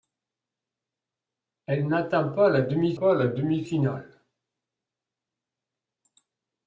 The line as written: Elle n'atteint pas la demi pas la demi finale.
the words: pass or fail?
pass